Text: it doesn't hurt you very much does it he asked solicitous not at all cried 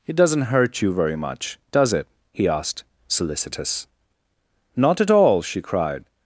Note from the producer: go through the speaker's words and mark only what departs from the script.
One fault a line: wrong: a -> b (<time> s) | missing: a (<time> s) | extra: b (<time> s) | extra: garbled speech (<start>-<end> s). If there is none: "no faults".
extra: she (5.4 s)